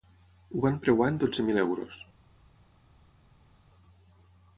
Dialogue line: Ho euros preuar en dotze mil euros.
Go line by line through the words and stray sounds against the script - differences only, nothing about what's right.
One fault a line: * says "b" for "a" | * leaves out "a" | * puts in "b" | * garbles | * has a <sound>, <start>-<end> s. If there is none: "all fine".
* says "van" for "euros"